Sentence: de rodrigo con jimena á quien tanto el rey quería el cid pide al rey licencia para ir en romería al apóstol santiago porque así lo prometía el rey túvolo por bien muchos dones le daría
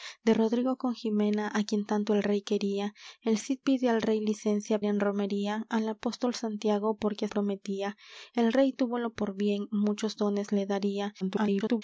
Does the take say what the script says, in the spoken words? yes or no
no